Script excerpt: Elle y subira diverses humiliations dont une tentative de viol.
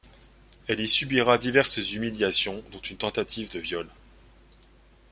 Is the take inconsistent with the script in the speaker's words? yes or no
no